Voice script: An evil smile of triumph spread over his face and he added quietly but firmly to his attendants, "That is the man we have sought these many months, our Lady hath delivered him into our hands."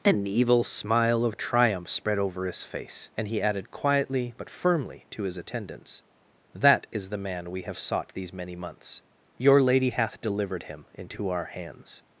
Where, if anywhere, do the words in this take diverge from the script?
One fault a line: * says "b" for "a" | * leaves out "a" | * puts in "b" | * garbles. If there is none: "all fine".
* says "your" for "our"